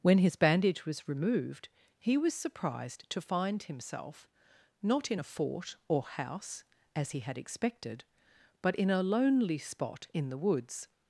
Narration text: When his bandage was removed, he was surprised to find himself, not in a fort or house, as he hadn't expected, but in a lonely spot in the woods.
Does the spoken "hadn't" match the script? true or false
false